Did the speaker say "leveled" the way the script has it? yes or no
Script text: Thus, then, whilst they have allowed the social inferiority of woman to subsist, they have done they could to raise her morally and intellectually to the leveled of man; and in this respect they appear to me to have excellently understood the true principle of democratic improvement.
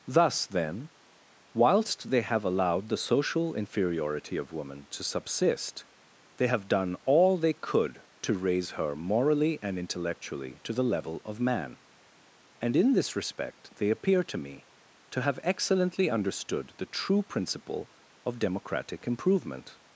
no